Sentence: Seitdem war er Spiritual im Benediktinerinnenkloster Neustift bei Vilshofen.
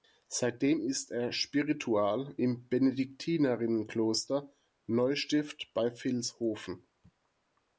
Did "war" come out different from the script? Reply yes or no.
yes